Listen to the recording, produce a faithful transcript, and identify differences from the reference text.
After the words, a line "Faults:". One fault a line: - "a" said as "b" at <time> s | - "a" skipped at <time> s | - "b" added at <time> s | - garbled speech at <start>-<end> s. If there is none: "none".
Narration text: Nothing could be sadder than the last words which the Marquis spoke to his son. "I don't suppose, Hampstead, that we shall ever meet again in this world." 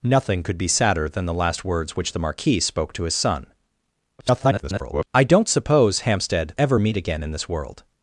Nothing could be sadder than the last words which the Marquis spoke to his son. [garbled] "I don't suppose, Hampstead, ever meet again in this world."
Faults:
- garbled speech at 4.2-5.1 s
- "that we shall" skipped at 6.6 s